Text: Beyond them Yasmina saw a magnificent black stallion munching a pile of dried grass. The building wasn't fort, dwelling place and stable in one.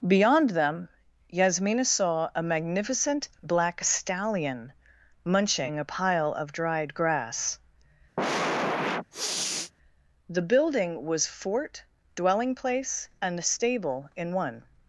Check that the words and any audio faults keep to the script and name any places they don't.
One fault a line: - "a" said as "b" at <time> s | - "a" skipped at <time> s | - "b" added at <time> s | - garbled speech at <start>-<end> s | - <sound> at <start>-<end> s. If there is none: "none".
- sniff at 8.2-9.7 s
- "wasn't" said as "was" at 11.1 s